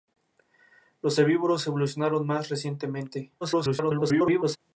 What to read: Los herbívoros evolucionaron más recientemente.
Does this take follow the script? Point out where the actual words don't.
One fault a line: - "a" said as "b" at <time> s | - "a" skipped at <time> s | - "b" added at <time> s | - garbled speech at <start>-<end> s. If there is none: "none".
- garbled speech at 3.4-4.6 s